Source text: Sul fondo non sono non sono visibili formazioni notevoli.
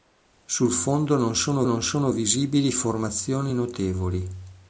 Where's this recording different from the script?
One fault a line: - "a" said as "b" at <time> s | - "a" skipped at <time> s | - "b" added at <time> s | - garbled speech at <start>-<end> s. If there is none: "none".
none